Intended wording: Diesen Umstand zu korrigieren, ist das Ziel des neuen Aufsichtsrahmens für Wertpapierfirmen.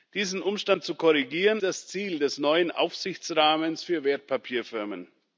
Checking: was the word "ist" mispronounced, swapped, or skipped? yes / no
yes